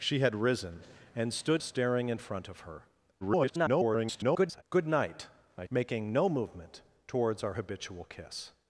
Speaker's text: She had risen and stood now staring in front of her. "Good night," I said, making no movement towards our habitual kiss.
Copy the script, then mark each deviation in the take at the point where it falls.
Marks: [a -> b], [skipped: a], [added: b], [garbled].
She had risen and stood [skipped: now] staring in front of her. [garbled] "Good night," I [skipped: said,] making no movement towards our habitual kiss.